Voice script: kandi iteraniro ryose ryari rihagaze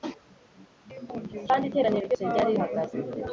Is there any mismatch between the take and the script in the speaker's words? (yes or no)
no